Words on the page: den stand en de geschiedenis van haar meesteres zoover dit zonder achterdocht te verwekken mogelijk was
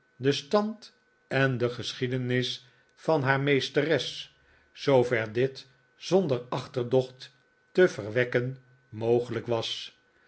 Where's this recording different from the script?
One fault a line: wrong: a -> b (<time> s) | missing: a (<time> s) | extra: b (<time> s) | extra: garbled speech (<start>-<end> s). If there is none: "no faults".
no faults